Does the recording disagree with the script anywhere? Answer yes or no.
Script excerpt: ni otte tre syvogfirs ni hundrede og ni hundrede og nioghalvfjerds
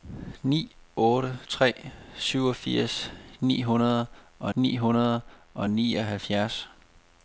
no